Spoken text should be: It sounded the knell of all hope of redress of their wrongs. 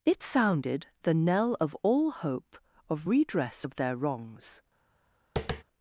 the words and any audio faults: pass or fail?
fail